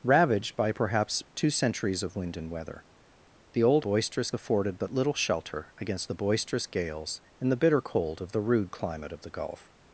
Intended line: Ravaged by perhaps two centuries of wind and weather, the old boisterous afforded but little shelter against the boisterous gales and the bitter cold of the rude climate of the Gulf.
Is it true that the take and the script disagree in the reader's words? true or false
false